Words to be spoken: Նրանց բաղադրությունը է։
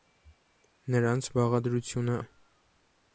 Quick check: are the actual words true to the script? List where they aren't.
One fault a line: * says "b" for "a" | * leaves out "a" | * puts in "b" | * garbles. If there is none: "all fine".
all fine